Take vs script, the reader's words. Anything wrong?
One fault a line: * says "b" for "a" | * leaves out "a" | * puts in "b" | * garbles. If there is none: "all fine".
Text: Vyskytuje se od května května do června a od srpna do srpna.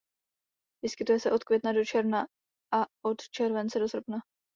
* leaves out "května"
* says "července" for "srpna"